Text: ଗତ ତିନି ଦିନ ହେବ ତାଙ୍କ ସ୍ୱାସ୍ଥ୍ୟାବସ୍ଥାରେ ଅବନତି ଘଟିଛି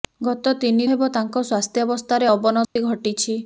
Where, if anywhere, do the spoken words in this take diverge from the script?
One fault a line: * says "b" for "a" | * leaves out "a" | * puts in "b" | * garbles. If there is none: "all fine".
* leaves out "ଦିନ"